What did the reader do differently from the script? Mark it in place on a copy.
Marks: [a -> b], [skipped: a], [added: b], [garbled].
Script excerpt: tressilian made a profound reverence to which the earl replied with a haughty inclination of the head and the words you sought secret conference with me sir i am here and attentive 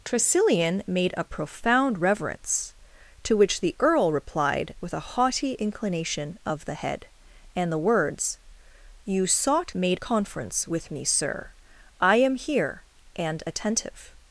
tressilian made a profound reverence to which the earl replied with a haughty inclination of the head and the words you sought [secret -> made] conference with me sir i am here and attentive